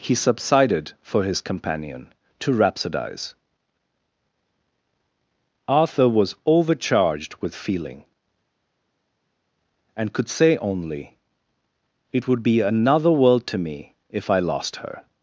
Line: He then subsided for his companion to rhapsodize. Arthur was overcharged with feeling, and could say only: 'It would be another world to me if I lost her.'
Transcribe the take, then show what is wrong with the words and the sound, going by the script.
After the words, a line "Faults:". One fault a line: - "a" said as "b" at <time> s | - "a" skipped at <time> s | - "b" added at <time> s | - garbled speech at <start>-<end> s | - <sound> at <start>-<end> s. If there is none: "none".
He subsided for his companion to rhapsodize. Arthur was overcharged with feeling, and could say only: 'It would be another world to me if I lost her.'
Faults:
- "then" skipped at 0.1 s